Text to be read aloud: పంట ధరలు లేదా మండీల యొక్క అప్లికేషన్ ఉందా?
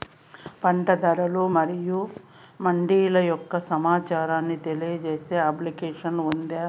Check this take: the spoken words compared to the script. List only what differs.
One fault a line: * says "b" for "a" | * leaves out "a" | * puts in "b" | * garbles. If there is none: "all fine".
* says "మరియు" for "లేదా"
* puts in "సమాచారాన్ని తెలియజేసే"